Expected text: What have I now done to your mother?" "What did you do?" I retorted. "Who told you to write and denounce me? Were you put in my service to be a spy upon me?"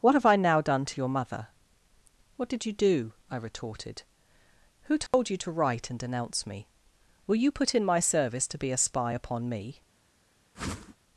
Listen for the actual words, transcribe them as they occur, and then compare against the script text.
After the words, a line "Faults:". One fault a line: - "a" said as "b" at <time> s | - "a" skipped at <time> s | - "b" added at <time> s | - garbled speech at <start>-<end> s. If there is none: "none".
What have I now done to your mother?" "What did you do?" I retorted. "Who told you to write and denounce me? Were you put in my service to be a spy upon me?"
Faults:
none